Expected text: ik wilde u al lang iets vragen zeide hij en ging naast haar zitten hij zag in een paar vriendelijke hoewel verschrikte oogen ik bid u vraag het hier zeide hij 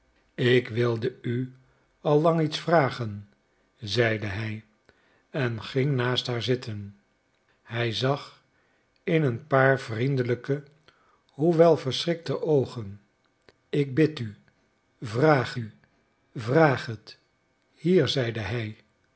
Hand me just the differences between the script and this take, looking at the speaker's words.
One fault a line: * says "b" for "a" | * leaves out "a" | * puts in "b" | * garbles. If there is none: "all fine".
* puts in "u vraag"